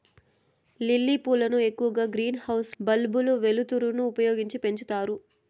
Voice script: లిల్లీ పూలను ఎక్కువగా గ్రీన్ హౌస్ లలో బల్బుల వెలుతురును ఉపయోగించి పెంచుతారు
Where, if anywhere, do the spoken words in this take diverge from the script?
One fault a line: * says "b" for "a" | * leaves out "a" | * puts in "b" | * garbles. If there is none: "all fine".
* leaves out "లలో"